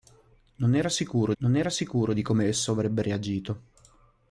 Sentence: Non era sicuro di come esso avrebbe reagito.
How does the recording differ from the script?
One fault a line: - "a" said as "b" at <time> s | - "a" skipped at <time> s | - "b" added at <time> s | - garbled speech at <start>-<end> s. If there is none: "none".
- "non era sicuro" added at 1.4 s